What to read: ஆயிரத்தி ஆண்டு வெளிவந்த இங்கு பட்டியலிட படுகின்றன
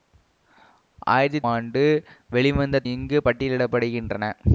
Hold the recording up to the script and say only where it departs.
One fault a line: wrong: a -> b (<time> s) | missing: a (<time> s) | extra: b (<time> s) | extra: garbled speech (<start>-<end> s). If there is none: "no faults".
no faults